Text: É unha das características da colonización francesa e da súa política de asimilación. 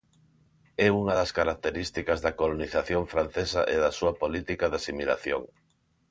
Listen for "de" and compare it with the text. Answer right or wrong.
right